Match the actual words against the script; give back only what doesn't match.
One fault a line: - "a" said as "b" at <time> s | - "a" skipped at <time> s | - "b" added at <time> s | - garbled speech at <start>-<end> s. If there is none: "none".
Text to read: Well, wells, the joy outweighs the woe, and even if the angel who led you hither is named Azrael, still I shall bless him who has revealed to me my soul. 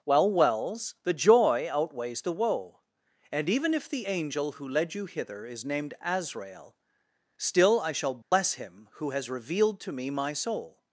none